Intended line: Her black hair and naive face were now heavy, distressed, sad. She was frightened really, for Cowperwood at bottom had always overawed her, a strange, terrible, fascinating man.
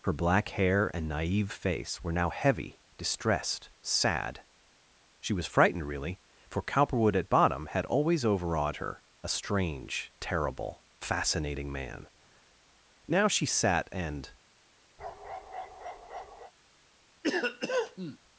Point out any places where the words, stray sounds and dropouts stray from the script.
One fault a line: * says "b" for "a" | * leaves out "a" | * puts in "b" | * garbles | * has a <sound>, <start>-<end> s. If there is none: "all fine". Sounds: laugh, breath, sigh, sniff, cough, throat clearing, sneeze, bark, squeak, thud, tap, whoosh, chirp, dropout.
* puts in "Now she sat and"
* has a bark, 15.0-16.5 s
* has a cough, 17.2-18.2 s